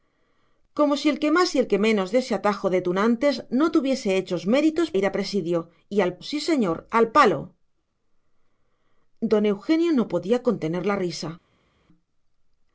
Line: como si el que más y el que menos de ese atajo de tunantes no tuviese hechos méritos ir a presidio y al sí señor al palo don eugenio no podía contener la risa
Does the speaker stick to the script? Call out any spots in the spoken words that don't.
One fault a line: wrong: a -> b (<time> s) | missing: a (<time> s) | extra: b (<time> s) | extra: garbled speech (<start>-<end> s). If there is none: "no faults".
no faults